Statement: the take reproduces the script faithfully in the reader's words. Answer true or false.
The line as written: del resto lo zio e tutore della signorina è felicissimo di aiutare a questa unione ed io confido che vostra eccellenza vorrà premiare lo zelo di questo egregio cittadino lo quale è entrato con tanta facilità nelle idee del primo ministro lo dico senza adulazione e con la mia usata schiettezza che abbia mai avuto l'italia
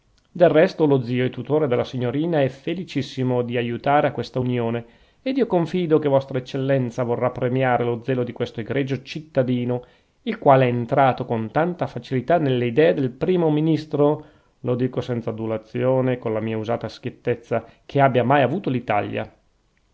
false